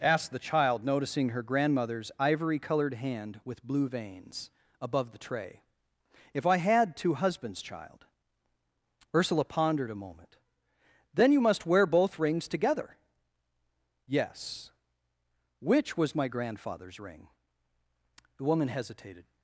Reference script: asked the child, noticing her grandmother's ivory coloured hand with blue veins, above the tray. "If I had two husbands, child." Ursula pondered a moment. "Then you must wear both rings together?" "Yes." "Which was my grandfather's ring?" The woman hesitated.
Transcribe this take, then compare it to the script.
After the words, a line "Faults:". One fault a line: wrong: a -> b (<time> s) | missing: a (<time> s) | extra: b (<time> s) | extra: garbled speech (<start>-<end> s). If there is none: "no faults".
asked the child, noticing her grandmother's ivory coloured hand with blue veins, above the tray. "If I had two husbands, child." Ursula pondered a moment. "Then you must wear both rings together?" "Yes." "Which was my grandfather's ring?" The woman hesitated.
Faults:
no faults